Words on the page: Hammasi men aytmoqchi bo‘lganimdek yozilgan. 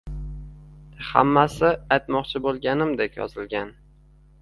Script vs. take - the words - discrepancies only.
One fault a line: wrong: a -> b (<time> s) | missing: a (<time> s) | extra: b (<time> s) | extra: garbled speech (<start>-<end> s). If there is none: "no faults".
missing: men (1.7 s)